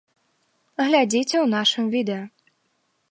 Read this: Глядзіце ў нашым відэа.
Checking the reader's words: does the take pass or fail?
pass